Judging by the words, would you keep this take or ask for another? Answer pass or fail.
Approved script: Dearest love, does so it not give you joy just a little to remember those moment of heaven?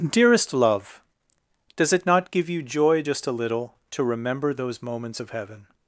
fail